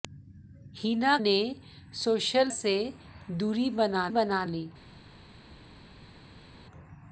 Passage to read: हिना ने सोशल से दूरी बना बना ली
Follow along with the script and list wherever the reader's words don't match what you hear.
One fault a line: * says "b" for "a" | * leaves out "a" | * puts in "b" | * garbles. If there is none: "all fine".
all fine